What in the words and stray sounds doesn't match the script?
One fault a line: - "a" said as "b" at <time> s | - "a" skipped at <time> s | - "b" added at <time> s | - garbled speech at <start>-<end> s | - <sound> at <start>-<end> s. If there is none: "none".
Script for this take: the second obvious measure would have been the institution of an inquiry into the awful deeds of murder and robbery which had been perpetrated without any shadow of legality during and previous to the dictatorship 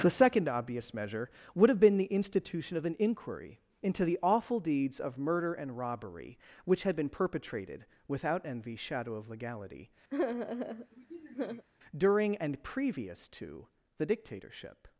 - "any" said as "envy" at 8.4 s
- sigh at 10.1-11.7 s